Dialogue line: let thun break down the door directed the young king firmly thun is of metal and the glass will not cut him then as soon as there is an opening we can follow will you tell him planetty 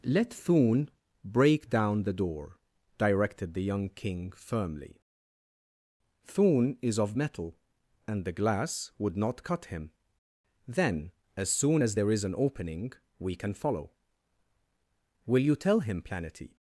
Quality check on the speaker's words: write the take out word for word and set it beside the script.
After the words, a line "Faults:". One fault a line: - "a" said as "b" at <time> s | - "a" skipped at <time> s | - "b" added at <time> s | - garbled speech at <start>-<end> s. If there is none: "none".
let thun break down the door directed the young king firmly thun is of metal and the glass would not cut him then as soon as there is an opening we can follow will you tell him planetty
Faults:
- "will" said as "would" at 9.0 s